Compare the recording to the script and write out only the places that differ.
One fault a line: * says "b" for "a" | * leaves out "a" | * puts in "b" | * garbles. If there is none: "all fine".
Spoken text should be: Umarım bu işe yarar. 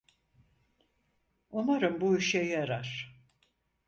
all fine